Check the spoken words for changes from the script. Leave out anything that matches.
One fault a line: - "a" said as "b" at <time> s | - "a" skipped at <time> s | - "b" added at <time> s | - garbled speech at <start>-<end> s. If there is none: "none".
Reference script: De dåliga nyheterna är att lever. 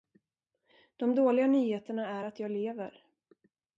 - "jag" added at 2.4 s